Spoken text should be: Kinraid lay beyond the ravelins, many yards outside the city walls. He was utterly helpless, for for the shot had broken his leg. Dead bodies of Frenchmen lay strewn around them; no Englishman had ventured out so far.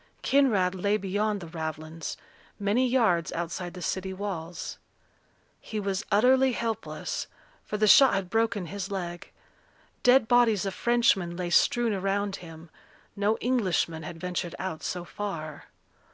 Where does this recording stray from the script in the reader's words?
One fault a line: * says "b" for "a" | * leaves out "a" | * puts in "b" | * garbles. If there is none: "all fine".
* leaves out "for"
* says "him" for "them"